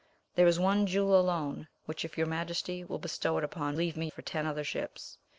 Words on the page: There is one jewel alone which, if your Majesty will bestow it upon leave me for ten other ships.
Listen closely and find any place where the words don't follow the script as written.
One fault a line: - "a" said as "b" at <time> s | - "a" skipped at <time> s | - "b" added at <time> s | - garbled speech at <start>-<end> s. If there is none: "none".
none